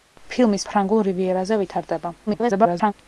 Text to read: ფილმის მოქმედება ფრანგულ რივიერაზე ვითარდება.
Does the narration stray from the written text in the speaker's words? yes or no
yes